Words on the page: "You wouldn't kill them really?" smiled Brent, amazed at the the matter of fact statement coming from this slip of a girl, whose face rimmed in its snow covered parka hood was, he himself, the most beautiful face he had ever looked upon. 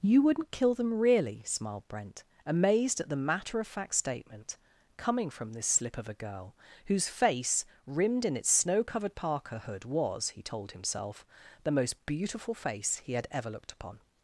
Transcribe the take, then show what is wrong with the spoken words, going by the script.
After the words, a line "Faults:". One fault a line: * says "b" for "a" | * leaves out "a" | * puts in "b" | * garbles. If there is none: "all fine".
"You wouldn't kill them really?" smiled Brent, amazed at the matter of fact statement coming from this slip of a girl, whose face rimmed in its snow covered parka hood was, he told himself, the most beautiful face he had ever looked upon.
Faults:
* leaves out "the"
* puts in "told"